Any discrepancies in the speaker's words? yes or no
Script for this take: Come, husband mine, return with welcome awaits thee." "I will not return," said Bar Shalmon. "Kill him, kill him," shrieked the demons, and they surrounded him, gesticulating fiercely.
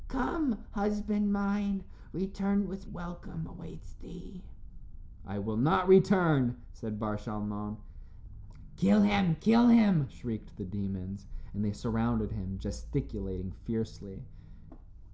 no